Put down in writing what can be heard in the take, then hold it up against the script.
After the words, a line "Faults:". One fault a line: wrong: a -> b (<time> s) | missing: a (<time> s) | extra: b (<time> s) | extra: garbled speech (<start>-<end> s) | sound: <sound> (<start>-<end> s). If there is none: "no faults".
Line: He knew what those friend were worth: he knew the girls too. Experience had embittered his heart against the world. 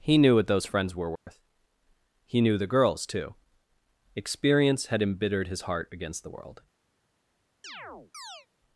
He knew what those friends were worth: he knew the girls too. Experience had embittered his heart against the world.
Faults:
wrong: friend -> friends (0.7 s)
sound: dropout (1.2-1.3 s)
sound: chirp (7.6-8.5 s)